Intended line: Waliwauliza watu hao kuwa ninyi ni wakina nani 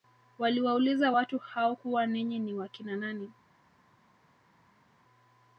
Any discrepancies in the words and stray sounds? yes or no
no